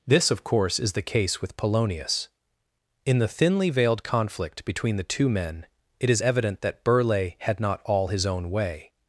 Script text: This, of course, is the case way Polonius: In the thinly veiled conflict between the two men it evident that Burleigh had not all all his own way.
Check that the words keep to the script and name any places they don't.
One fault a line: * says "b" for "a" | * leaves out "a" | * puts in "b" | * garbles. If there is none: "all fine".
* says "with" for "way"
* puts in "is"
* leaves out "all"